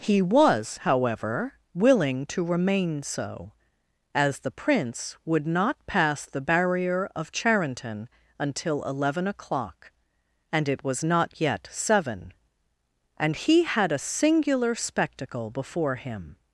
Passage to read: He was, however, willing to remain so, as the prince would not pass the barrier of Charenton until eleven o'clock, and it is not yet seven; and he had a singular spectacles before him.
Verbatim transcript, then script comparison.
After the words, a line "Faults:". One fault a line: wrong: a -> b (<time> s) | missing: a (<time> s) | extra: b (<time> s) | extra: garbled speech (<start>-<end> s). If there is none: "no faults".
He was, however, willing to remain so, as the prince would not pass the barrier of Charenton until eleven o'clock, and it was not yet seven; and he had a singular spectacle before him.
Faults:
wrong: is -> was (10.8 s)
wrong: spectacles -> spectacle (14.7 s)